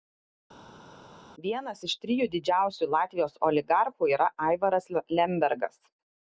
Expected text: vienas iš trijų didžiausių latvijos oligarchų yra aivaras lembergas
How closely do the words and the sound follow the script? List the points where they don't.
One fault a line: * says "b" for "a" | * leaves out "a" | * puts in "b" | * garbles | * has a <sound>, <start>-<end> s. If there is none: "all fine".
all fine